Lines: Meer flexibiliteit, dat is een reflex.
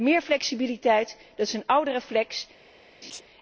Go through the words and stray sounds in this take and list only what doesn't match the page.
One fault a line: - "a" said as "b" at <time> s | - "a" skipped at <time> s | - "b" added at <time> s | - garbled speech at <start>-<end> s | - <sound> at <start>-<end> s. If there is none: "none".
- "oude" added at 1.6 s
- laugh at 3.0-3.2 s